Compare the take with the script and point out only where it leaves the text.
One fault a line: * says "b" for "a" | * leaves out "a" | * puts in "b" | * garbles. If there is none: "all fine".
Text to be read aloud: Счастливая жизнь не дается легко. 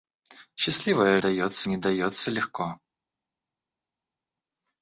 * says "дается" for "жизнь"